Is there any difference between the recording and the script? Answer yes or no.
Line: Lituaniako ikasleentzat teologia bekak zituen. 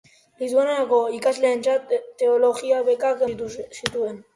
no